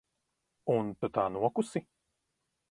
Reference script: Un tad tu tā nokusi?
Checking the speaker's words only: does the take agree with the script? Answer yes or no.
no